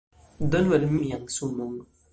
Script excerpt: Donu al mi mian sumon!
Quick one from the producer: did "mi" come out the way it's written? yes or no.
no